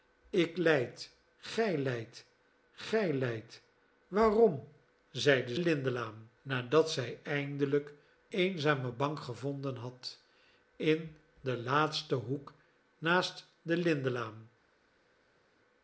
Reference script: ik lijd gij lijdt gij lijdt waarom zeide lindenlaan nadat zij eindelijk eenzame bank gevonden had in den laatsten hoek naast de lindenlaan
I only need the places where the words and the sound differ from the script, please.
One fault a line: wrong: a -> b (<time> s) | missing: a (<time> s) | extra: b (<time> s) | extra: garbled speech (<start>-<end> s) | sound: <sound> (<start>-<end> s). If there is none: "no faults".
no faults